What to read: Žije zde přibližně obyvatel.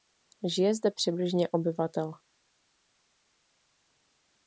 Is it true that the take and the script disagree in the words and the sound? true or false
false